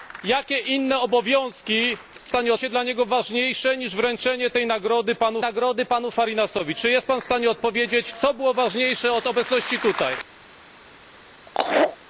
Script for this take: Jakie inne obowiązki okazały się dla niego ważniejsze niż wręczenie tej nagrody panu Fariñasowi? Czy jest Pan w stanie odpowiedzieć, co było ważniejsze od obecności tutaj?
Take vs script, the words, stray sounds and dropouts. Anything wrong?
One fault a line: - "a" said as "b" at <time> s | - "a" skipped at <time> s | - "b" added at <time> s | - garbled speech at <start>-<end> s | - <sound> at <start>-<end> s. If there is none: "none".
- "okazały" said as "stanie" at 2.3 s
- "nagrody panu" added at 5.4 s
- laugh at 11.5-12.0 s